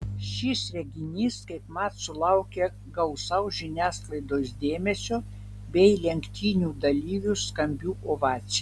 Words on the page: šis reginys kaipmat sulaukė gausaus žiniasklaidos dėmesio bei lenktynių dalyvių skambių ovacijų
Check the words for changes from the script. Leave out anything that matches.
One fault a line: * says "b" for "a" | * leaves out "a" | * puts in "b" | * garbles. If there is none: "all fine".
all fine